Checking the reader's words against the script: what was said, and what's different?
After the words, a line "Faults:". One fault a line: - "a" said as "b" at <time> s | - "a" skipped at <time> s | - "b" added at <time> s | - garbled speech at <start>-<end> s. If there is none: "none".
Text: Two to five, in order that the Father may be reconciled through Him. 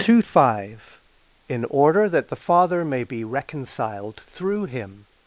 Two five, in order that the Father may be reconciled through Him.
Faults:
- "to" skipped at 0.2 s